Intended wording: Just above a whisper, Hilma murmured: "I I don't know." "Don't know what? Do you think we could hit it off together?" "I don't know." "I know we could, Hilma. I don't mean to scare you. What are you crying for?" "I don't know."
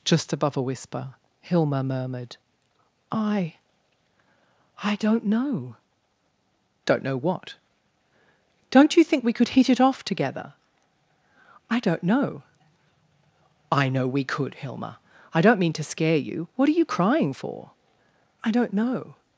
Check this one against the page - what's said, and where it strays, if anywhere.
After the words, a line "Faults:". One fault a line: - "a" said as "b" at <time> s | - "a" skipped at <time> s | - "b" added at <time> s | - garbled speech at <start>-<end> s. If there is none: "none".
Just above a whisper, Hilma murmured: "I I don't know." "Don't know what? Don't you think we could hit it off together?" "I don't know." "I know we could, Hilma. I don't mean to scare you. What are you crying for?" "I don't know."
Faults:
- "Do" said as "Don't" at 8.7 s